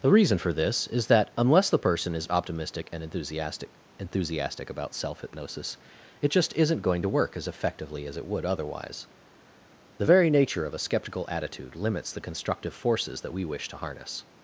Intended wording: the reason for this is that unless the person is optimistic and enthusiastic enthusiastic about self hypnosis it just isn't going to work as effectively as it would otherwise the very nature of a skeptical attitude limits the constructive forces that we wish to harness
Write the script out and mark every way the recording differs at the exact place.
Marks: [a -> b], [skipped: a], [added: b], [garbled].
the reason for this is that unless the person is optimistic and enthusiastic enthusiastic about self hypnosis it just isn't going to work as effectively as it would otherwise the very nature of a skeptical attitude limits the constructive forces that we wish to harness